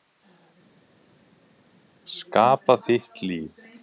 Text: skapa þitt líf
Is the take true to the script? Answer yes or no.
yes